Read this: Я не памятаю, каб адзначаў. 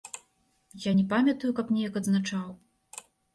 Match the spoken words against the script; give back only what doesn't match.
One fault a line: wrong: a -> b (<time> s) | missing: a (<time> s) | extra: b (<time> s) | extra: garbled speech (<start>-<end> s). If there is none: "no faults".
extra: неяк (1.8 s)